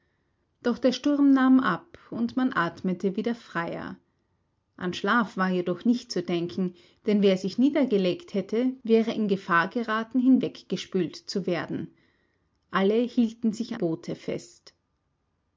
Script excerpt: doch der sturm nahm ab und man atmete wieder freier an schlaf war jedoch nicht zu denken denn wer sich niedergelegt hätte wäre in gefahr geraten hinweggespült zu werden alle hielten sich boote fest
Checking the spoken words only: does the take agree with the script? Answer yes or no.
yes